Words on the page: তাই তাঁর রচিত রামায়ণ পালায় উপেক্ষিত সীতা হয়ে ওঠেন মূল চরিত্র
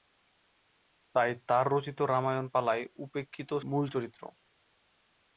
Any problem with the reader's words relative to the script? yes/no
yes